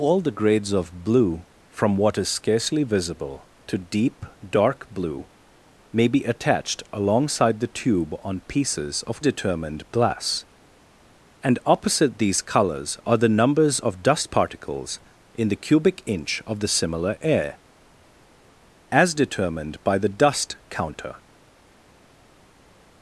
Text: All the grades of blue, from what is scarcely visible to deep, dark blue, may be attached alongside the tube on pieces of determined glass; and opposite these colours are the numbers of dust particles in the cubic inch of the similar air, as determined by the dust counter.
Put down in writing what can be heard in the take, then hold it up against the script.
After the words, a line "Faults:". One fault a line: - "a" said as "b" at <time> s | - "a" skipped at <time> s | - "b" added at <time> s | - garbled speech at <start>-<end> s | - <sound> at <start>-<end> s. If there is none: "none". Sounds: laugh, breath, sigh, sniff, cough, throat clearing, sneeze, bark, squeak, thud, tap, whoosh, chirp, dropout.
All the grades of blue, from what is scarcely visible to deep, dark blue, may be attached alongside the tube on pieces of determined glass; and opposite these colours are the numbers of dust particles in the cubic inch of the similar air, as determined by the dust counter.
Faults:
none